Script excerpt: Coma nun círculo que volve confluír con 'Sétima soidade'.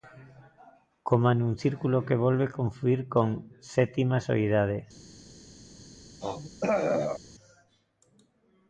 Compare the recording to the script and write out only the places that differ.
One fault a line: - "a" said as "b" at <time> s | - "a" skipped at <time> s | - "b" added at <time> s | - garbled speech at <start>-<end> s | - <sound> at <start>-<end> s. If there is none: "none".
- throat clearing at 6.2-7.2 s